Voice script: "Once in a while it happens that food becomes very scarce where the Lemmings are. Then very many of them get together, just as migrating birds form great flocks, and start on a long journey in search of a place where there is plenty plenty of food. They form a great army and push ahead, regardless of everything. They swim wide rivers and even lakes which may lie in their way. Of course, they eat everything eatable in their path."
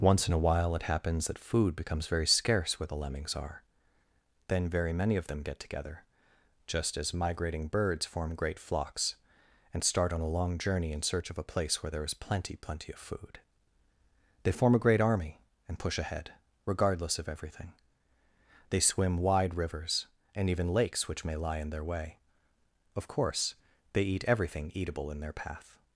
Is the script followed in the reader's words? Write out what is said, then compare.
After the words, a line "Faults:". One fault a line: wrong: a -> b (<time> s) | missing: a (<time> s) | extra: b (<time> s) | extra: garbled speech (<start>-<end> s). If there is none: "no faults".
"Once in a while it happens that food becomes very scarce where the Lemmings are. Then very many of them get together, just as migrating birds form great flocks, and start on a long journey in search of a place where there is plenty plenty of food. They form a great army and push ahead, regardless of everything. They swim wide rivers and even lakes which may lie in their way. Of course, they eat everything eatable in their path."
Faults:
no faults